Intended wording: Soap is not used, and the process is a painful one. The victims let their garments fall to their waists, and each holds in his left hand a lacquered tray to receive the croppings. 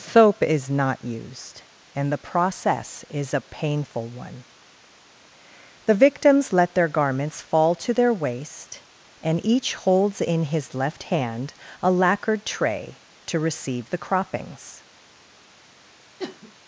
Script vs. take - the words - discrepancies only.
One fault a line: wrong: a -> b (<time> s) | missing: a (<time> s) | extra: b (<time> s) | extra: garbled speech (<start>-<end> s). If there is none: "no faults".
wrong: waists -> waist (8.1 s)